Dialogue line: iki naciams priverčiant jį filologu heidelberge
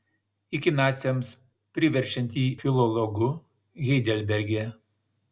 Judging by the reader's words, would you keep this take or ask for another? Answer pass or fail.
pass